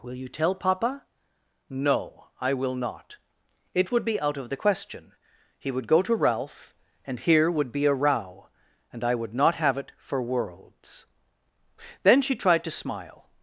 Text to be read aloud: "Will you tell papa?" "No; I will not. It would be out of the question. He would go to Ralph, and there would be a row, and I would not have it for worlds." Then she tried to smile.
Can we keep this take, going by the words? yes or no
no